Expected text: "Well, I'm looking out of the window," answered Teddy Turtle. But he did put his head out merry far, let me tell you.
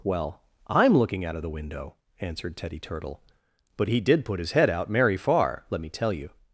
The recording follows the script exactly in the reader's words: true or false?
true